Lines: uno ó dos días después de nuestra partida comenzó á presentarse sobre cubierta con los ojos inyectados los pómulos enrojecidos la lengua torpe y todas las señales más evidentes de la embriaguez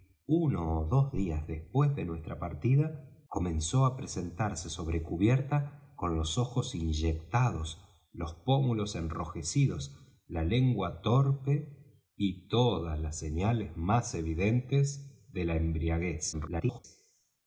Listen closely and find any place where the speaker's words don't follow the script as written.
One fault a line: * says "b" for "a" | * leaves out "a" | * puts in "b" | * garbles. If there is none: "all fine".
* garbles